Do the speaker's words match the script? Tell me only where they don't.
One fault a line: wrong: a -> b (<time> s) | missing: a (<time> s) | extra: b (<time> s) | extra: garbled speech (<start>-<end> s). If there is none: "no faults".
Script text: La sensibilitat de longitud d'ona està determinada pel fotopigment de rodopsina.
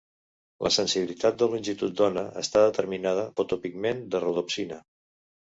missing: pel (3.3 s)